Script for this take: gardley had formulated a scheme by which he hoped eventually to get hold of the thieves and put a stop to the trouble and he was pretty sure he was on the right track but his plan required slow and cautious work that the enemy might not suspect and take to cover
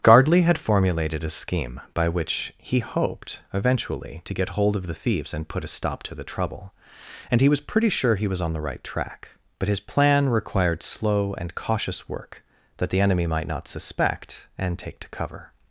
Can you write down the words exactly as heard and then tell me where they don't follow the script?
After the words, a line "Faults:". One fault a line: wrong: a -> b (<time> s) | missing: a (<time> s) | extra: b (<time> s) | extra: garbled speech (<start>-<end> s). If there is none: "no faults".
gardley had formulated a scheme by which he hoped eventually to get hold of the thieves and put a stop to the trouble and he was pretty sure he was on the right track but his plan required slow and cautious work that the enemy might not suspect and take to cover
Faults:
no faults